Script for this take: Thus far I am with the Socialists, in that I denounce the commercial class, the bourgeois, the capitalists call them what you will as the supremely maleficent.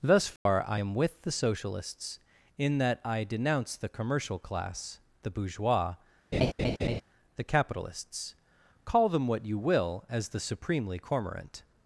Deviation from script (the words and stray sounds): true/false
true